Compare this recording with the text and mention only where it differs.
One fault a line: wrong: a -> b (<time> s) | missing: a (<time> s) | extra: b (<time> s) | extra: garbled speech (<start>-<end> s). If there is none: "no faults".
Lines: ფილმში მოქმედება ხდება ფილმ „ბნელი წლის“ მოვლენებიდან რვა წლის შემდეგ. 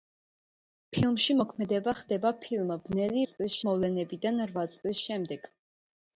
no faults